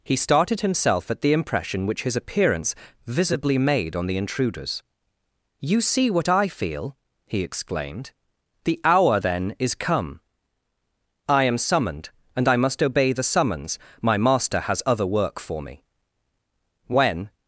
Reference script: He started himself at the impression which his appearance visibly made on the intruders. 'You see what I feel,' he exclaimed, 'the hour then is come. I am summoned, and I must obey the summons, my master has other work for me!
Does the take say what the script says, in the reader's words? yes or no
no